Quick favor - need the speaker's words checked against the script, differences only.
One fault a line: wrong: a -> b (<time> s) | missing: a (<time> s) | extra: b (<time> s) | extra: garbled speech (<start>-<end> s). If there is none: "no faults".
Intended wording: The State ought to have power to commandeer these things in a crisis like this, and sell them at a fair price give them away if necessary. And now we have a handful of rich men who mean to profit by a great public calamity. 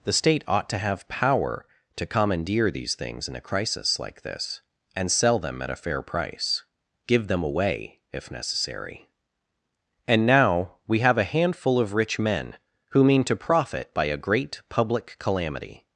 no faults